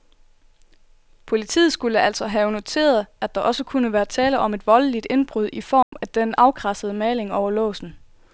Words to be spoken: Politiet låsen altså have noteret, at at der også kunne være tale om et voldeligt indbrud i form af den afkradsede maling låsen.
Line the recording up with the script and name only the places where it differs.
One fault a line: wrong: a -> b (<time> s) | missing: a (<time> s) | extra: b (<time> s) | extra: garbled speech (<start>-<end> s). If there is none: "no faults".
wrong: låsen -> skulle (1.7 s)
missing: at (3.4 s)
extra: over (7.3 s)